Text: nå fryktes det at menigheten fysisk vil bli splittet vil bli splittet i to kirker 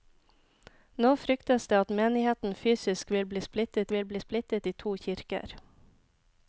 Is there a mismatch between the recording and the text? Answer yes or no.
no